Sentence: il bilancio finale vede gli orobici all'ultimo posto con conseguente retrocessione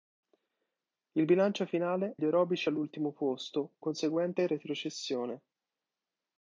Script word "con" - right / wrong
wrong